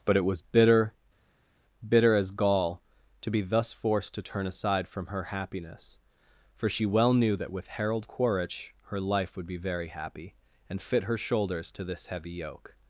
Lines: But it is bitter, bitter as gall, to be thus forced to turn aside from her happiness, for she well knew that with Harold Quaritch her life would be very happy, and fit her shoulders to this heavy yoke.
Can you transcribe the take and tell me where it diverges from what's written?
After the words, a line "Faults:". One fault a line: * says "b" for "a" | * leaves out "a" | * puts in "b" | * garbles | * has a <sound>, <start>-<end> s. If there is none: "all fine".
But it was bitter, bitter as gall, to be thus forced to turn aside from her happiness, for she well knew that with Harold Quaritch her life would be very happy, and fit her shoulders to this heavy yoke.
Faults:
* says "was" for "is"